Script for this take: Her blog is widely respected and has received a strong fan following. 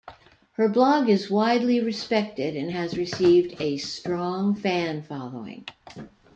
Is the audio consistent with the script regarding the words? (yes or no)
yes